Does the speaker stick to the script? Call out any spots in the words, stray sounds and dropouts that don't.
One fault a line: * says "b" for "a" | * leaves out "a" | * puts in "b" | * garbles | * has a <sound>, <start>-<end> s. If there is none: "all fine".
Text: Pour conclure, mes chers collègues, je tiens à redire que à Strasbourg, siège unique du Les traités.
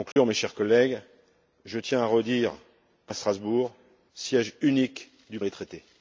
* has a dropout, 0.1-0.2 s